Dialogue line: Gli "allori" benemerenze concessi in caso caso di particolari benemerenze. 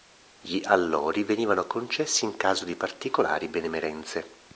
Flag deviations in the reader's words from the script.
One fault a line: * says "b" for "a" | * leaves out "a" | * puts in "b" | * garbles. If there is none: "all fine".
* says "venivano" for "benemerenze"
* leaves out "caso"